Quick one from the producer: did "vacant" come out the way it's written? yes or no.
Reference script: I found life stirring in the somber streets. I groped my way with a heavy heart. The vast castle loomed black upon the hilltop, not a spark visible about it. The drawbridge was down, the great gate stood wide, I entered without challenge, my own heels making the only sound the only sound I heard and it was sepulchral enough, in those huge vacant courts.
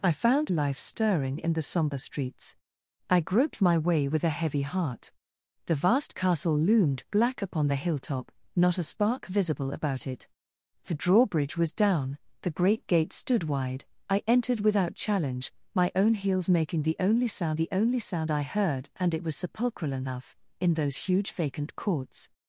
yes